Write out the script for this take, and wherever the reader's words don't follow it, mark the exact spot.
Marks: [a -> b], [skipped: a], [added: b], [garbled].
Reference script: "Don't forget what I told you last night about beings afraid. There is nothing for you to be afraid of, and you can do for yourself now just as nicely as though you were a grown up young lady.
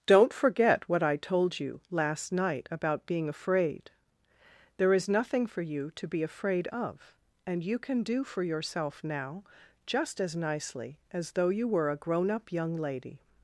"Don't forget what I told you last night about [beings -> being] afraid. There is nothing for you to be afraid of, and you can do for yourself now just as nicely as though you were a grown up young lady.